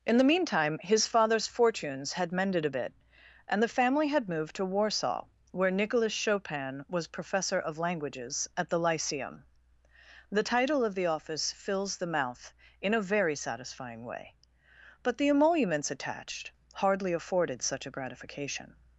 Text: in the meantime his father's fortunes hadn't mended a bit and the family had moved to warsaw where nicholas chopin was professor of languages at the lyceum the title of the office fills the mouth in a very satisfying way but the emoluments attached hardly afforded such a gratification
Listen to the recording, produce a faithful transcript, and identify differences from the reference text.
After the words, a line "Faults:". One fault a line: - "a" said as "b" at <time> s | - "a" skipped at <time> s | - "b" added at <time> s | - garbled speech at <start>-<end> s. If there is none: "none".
in the meantime his father's fortunes had mended a bit and the family had moved to warsaw where nicholas chopin was professor of languages at the lyceum the title of the office fills the mouth in a very satisfying way but the emoluments attached hardly afforded such a gratification
Faults:
- "hadn't" said as "had" at 2.1 s